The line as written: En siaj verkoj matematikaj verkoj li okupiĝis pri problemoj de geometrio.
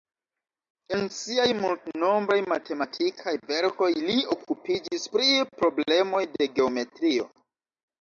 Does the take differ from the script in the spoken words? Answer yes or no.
yes